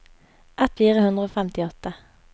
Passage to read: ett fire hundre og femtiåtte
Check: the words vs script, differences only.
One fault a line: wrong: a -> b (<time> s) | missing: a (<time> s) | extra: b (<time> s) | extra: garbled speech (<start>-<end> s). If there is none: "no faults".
no faults